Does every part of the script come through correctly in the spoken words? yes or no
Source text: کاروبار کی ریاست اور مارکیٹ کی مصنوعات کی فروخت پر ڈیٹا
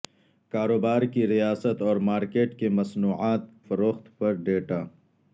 no